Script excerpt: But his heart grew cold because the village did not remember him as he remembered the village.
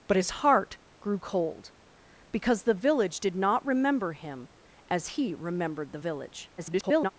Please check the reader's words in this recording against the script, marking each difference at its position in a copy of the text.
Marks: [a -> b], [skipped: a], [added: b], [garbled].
But his heart grew cold because the village did not remember him as he remembered the village. [garbled]